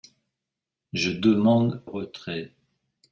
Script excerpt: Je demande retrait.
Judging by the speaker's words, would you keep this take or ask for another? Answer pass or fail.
pass